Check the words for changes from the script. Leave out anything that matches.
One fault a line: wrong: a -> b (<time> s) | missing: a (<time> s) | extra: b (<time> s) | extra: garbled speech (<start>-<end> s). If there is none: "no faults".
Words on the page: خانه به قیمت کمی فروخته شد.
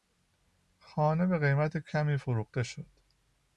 no faults